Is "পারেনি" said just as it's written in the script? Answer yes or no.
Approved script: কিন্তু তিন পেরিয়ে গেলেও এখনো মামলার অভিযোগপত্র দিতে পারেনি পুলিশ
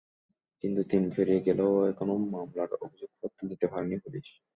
yes